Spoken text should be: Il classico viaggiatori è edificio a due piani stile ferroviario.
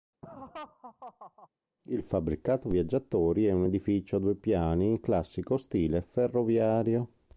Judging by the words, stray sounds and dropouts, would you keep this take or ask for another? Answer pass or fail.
fail